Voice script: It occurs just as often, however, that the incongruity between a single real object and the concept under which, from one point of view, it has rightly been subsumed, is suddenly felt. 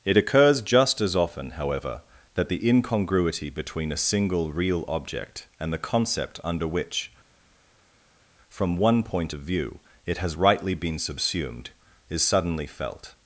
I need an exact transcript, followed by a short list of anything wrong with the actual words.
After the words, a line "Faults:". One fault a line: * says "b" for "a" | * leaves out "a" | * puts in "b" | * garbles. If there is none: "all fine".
It occurs just as often, however, that the incongruity between a single real object and the concept under which, from one point of view, it has rightly been subsumed, is suddenly felt.
Faults:
all fine